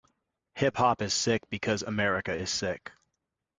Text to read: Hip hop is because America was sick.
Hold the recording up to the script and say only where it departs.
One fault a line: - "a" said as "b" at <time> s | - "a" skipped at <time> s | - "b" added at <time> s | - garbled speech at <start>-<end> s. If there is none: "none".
- "sick" added at 1.1 s
- "was" said as "is" at 2.3 s